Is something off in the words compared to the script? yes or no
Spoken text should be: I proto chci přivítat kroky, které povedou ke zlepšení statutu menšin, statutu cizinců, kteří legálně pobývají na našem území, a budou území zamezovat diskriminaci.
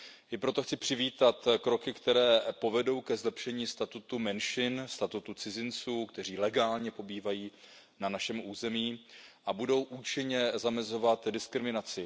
yes